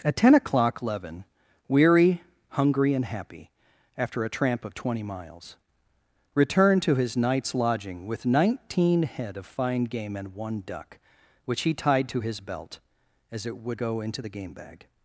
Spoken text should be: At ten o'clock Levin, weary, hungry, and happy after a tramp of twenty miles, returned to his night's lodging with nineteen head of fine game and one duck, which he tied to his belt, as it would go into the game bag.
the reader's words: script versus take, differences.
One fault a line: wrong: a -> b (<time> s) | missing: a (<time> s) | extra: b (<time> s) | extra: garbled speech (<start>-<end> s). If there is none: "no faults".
no faults